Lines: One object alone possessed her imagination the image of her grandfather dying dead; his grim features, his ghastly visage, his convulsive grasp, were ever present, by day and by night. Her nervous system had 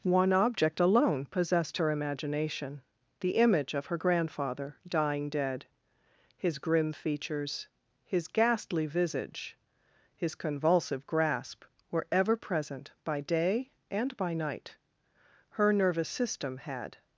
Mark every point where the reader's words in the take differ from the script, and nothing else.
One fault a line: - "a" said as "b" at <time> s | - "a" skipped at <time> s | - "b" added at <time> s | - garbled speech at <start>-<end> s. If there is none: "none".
none